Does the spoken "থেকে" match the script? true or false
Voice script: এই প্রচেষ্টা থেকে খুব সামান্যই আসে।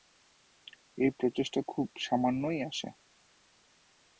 false